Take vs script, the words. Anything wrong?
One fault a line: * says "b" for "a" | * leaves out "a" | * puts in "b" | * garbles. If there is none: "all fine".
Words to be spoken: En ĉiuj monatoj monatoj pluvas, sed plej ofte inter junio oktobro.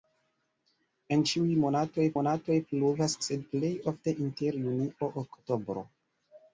all fine